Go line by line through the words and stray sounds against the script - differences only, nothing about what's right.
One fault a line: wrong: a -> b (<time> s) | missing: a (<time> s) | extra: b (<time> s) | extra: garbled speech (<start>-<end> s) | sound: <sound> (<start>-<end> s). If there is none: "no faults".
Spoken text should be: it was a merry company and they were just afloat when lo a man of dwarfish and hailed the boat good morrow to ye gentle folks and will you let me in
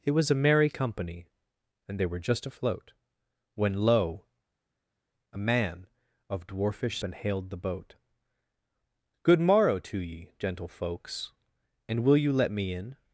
no faults